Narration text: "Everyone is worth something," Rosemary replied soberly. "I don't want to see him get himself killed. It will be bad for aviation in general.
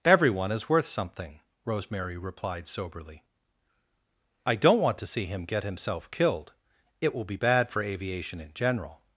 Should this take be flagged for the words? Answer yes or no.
no